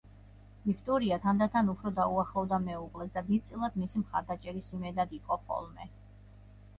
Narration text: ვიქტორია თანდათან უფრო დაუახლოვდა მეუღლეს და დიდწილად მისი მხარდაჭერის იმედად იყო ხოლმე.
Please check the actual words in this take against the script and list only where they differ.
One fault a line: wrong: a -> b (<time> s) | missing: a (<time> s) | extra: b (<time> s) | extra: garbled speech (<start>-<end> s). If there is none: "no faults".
no faults